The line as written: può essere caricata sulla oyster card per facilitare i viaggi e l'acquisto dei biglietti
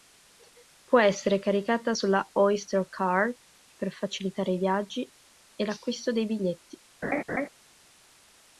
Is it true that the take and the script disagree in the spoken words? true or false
false